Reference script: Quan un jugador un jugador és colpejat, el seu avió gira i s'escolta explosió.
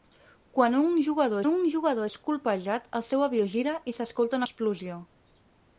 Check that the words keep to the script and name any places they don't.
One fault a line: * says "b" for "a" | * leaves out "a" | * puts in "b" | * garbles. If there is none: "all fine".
all fine